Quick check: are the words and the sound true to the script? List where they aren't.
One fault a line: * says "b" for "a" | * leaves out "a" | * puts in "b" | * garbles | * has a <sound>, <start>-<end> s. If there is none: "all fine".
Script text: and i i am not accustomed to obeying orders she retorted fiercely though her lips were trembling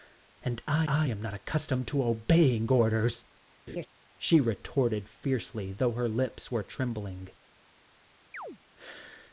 * has a laugh, 3.7-3.9 s
* has a chirp, 8.3-8.6 s